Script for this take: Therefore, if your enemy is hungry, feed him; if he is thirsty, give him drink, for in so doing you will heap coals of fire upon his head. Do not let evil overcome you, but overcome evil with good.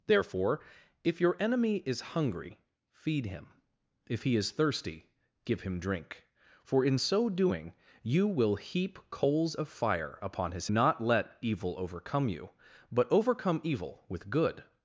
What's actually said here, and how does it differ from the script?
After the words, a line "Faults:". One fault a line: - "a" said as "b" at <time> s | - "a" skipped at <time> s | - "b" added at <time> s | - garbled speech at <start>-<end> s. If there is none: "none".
Therefore, if your enemy is hungry, feed him; if he is thirsty, give him drink, for in so doing you will heap coals of fire upon his not let evil overcome you, but overcome evil with good.
Faults:
- "head Do" skipped at 10.7 s